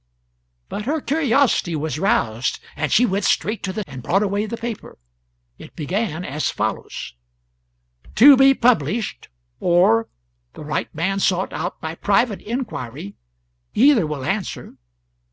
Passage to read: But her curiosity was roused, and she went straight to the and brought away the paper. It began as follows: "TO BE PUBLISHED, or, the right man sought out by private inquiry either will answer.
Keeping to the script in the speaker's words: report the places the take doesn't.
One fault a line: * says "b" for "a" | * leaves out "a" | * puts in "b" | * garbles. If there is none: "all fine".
all fine